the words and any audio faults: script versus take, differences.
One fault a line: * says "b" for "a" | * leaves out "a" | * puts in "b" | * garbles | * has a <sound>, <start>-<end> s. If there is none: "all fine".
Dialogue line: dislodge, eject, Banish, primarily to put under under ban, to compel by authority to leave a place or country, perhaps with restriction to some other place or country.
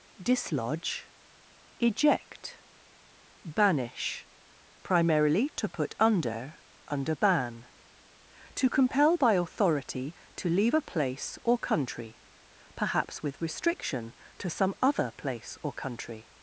all fine